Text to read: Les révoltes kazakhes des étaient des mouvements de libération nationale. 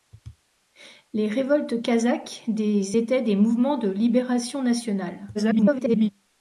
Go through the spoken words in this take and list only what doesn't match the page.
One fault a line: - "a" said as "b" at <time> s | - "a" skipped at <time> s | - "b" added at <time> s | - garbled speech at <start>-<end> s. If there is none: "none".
- garbled speech at 5.3-6.1 s